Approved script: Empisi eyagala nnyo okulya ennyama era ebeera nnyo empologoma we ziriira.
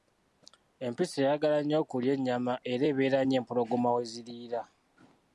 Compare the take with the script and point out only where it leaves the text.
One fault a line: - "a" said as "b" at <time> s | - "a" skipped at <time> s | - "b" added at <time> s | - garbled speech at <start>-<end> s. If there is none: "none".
none